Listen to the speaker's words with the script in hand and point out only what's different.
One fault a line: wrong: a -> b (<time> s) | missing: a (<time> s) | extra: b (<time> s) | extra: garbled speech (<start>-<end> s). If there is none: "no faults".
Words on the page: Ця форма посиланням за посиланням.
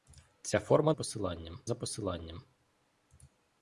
no faults